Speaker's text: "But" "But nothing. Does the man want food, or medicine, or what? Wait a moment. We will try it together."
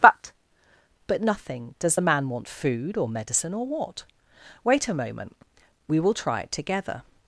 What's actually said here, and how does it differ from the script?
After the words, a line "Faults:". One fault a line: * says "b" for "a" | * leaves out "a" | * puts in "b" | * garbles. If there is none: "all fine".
"But" "But nothing. Does the man want food, or medicine, or what? Wait a moment. We will try it together."
Faults:
all fine